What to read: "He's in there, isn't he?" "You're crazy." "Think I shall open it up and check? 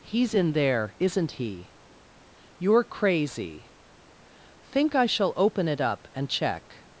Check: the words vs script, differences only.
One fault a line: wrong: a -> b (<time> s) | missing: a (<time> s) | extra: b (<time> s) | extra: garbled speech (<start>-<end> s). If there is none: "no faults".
no faults